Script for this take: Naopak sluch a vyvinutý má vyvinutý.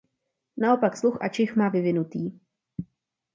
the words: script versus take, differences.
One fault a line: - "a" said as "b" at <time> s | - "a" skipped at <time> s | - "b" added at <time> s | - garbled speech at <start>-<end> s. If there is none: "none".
- "vyvinutý" said as "čich" at 1.3 s